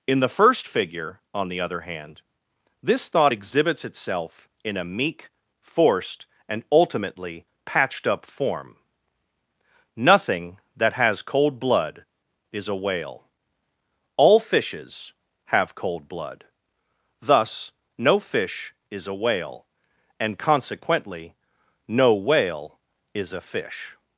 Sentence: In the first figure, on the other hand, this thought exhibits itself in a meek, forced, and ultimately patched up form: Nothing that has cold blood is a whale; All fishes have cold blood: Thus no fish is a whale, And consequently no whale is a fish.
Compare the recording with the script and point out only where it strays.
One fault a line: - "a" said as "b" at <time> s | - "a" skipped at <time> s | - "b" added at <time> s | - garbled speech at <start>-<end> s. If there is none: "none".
none